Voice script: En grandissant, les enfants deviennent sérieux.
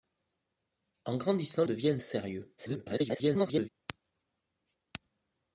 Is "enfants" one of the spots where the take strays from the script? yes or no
yes